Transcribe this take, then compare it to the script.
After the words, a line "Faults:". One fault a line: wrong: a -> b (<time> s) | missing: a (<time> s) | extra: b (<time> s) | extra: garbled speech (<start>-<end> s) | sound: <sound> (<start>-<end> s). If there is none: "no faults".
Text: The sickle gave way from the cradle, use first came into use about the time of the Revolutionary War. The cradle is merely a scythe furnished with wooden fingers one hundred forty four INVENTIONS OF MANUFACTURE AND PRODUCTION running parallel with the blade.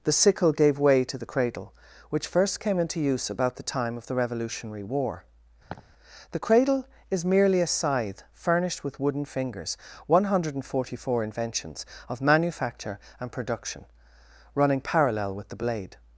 The sickle gave way to the cradle, which first came into use about the time of the Revolutionary War. The cradle is merely a scythe furnished with wooden fingers one hundred forty four INVENTIONS OF MANUFACTURE AND PRODUCTION running parallel with the blade.
Faults:
wrong: from -> to (1.0 s)
wrong: use -> which (2.1 s)
sound: laugh (5.7-5.9 s)